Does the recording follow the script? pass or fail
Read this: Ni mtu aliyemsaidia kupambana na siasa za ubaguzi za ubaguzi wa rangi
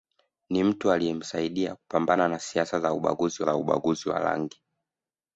pass